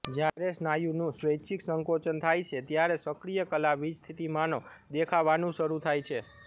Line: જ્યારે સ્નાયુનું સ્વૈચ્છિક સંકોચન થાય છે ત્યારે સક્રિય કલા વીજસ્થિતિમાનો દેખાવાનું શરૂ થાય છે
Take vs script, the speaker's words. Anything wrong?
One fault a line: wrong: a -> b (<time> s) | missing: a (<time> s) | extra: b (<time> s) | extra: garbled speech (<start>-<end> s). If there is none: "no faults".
no faults